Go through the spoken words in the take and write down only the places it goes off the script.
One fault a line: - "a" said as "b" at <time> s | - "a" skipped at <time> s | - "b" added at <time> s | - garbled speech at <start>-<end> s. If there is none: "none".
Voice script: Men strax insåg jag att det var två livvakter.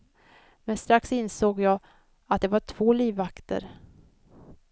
none